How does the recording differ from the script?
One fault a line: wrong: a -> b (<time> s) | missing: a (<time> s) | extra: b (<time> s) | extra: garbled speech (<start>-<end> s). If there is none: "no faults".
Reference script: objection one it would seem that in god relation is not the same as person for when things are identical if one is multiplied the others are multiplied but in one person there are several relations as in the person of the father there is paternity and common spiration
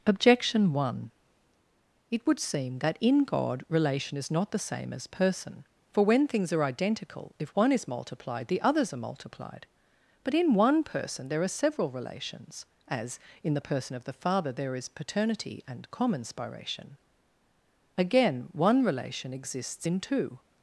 extra: again one relation exists in two (17.9 s)